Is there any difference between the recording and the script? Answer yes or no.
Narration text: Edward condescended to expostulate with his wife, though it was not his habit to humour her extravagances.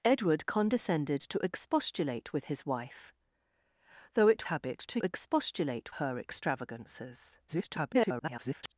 yes